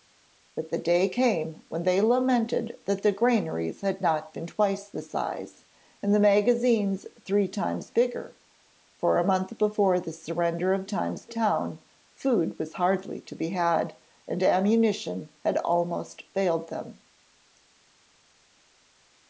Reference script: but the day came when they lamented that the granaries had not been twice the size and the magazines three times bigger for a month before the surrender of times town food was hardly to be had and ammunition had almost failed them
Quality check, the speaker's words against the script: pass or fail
pass